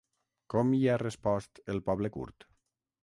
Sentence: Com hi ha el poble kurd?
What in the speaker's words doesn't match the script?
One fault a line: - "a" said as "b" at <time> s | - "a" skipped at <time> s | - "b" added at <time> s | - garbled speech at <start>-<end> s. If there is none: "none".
- "respost" added at 1.0 s